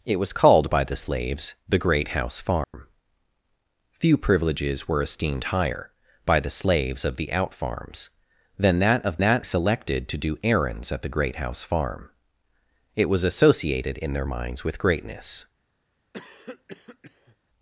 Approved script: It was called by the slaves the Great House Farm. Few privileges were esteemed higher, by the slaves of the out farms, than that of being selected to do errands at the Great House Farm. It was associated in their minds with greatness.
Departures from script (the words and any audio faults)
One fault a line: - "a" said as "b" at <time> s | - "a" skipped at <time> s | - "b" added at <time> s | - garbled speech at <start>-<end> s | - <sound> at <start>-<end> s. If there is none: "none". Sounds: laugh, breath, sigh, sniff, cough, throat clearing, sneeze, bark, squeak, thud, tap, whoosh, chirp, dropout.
- dropout at 2.6-2.7 s
- "being" said as "that" at 9.2 s
- cough at 16.1-17.4 s